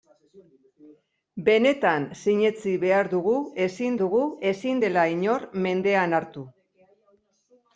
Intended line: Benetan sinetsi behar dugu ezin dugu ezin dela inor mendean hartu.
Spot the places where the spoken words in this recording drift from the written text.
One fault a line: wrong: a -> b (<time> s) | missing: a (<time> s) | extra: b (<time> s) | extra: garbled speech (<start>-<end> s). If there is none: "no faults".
no faults